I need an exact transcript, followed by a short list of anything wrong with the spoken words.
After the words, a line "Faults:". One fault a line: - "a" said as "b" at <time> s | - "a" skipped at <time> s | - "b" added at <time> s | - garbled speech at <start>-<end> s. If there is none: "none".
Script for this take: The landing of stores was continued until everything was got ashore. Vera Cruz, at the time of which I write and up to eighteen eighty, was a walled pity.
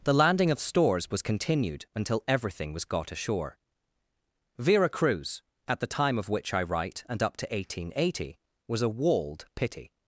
The landing of stores was continued until everything was got ashore. Vera Cruz, at the time of which I write and up to eighteen eighty, was a walled pity.
Faults:
none